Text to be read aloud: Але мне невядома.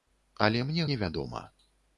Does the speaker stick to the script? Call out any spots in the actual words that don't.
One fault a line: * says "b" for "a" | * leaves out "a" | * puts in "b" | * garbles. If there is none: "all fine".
all fine